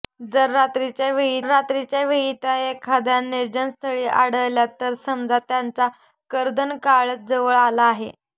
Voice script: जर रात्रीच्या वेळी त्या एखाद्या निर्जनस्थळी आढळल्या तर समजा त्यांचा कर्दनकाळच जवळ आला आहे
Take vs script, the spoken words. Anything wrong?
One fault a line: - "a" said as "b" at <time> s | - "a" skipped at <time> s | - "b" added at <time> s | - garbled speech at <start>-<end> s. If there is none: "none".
- "रात्रीच्या वेळी" added at 1.4 s